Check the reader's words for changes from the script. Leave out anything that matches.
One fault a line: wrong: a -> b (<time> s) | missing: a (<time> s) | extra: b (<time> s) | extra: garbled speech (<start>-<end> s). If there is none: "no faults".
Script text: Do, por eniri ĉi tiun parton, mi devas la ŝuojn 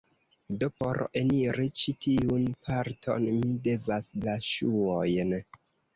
no faults